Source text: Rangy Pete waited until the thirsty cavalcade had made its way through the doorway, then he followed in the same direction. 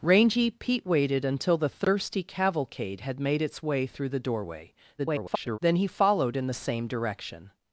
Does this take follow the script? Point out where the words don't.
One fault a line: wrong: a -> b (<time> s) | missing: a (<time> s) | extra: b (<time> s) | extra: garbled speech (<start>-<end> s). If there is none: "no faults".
extra: garbled speech (5.0-5.6 s)